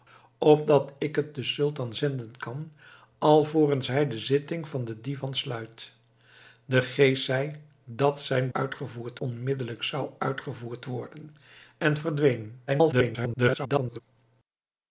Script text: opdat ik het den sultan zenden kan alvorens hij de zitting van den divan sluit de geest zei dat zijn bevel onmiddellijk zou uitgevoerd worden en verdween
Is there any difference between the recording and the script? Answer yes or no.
yes